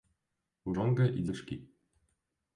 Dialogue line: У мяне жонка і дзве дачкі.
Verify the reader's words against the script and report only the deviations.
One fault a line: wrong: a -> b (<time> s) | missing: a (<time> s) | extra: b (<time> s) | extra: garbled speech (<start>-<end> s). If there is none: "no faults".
missing: мяне (0.7 s)
missing: дзве (1.3 s)